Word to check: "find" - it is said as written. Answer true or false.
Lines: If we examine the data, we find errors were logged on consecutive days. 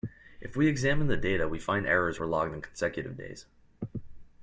true